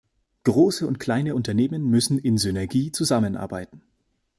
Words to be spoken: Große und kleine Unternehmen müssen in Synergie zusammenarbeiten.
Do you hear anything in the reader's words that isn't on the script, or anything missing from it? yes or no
no